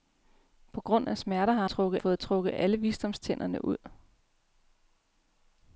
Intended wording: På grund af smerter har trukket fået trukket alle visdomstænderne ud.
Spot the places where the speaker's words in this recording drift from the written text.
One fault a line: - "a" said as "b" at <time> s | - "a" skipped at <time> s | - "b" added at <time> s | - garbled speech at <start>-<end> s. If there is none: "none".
none